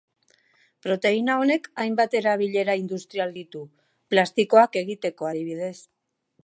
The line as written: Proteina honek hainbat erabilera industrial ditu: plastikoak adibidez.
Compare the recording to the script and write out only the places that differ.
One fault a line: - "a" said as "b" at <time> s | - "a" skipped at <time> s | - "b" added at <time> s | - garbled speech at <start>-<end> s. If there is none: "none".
- "egiteko" added at 4.8 s